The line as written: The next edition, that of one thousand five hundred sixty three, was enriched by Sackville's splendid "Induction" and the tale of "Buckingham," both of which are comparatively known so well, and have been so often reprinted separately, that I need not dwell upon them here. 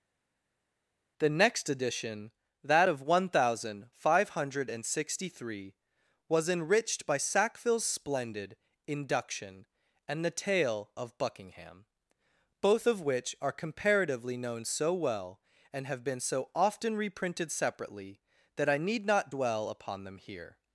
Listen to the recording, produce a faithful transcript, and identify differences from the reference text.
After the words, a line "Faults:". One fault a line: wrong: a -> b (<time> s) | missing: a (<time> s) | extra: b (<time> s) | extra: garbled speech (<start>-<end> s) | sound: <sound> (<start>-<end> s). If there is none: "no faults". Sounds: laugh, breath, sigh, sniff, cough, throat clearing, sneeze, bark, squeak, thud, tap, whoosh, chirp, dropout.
The next edition, that of one thousand five hundred sixty three, was enriched by Sackville's splendid "Induction" and the tale of "Buckingham," both of which are comparatively known so well, and have been so often reprinted separately, that I need not dwell upon them here.
Faults:
no faults